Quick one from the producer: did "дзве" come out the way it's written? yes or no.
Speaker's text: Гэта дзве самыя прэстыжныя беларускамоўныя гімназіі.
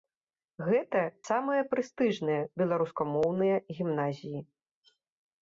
no